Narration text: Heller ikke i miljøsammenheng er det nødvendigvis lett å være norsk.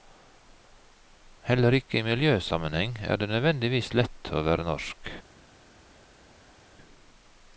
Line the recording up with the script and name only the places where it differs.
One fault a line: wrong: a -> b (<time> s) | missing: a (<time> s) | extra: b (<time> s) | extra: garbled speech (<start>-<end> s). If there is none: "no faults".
no faults